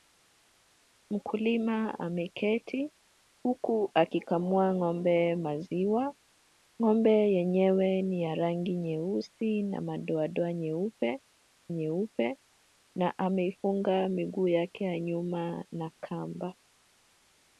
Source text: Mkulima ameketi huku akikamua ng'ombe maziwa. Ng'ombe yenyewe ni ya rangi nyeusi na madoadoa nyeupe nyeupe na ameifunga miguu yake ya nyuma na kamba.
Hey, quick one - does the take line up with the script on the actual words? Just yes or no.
yes